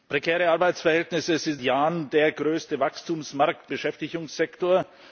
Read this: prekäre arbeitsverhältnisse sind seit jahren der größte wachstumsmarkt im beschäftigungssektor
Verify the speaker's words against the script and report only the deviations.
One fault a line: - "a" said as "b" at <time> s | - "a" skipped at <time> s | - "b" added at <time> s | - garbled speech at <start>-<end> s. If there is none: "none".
- "seit" skipped at 1.6 s
- "im" skipped at 3.7 s